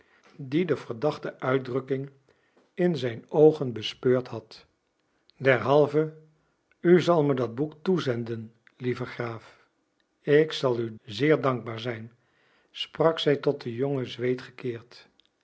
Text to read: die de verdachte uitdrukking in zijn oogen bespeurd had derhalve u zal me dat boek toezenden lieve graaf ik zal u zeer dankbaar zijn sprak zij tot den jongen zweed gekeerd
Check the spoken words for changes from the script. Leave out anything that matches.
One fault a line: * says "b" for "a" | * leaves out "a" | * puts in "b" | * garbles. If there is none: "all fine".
all fine